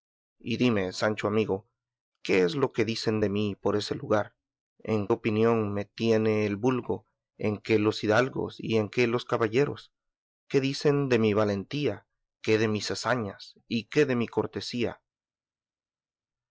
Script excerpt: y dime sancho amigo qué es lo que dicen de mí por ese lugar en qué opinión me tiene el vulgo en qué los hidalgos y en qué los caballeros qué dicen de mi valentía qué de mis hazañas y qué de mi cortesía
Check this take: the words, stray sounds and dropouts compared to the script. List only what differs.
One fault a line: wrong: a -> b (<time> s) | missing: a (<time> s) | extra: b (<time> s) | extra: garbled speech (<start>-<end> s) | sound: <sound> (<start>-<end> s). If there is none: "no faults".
missing: qué (5.1 s)